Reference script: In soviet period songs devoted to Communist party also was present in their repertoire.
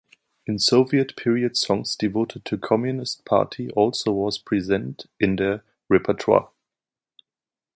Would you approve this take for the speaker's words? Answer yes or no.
yes